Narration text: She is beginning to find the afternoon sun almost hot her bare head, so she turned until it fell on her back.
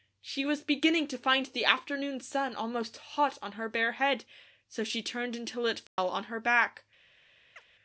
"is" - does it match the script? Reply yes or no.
no